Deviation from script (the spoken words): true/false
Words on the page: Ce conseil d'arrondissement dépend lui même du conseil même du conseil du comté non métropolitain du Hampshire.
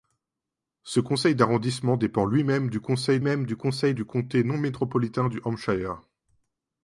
false